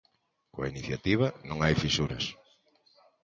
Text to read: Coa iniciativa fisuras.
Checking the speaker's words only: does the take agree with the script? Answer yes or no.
no